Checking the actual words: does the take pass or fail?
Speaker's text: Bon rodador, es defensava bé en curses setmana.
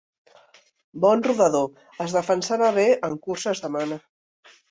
pass